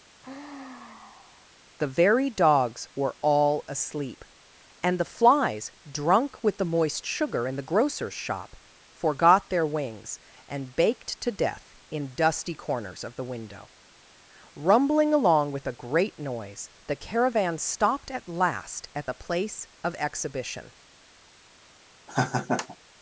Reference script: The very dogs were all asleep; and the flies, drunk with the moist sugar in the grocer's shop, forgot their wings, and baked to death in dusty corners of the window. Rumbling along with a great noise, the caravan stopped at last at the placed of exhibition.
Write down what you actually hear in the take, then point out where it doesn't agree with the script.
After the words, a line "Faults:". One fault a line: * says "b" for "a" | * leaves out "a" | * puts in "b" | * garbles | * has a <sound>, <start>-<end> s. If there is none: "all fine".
The very dogs were all asleep; and the flies, drunk with the moist sugar in the grocer's shop, forgot their wings, and baked to death in dusty corners of the window. Rumbling along with a great noise, the caravan stopped at last at the place of exhibition.
Faults:
* has a sigh, 0.2-1.5 s
* says "place" for "placed"
* has a laugh, 22.1-22.8 s